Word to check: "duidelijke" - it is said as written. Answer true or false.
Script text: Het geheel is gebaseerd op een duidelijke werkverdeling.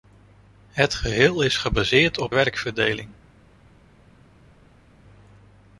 false